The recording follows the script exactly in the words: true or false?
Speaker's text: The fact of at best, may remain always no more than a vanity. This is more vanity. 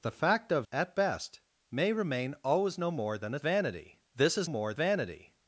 true